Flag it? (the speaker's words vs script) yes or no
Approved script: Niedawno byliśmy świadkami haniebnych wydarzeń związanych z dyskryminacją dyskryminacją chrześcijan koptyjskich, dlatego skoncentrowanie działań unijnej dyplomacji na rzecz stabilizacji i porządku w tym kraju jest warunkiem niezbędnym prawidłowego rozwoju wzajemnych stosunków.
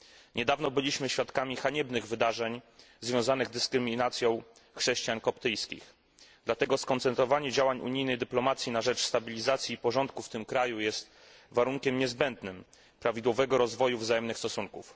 yes